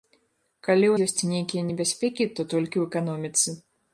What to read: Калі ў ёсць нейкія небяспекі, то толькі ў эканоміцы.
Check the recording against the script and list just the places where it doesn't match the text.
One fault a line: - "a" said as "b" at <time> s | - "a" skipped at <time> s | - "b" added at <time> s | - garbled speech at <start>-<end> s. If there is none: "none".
none